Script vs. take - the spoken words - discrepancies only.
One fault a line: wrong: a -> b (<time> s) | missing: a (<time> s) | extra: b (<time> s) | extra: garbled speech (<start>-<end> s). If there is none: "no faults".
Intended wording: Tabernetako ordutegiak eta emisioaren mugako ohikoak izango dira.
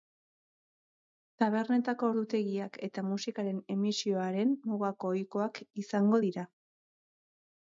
extra: musikaren (3.1 s)